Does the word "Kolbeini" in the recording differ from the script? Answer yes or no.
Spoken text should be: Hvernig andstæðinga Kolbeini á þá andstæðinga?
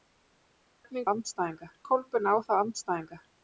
no